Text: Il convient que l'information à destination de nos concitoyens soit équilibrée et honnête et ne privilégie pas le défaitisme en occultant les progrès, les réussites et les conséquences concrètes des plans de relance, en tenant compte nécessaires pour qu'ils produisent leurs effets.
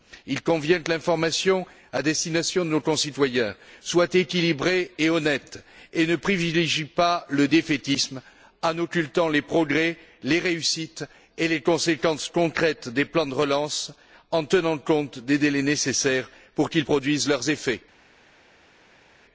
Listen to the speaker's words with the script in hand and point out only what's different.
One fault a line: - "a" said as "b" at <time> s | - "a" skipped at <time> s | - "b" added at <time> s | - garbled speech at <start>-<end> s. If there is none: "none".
- "des délais" added at 15.2 s